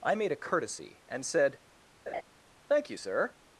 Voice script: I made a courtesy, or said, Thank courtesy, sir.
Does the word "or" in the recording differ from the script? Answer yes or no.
yes